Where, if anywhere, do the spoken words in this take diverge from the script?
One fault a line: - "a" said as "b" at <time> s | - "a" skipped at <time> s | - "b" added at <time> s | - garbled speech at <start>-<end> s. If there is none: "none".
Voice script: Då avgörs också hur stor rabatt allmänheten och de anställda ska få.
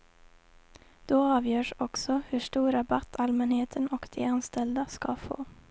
none